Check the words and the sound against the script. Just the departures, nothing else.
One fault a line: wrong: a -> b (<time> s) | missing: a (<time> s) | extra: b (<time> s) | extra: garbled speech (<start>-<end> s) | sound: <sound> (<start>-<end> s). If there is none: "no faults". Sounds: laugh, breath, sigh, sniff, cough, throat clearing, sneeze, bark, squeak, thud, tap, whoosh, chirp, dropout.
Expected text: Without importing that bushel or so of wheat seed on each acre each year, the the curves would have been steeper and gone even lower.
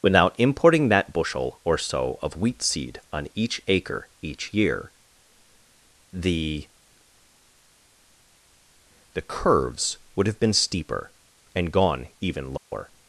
sound: dropout (12.6-12.7 s)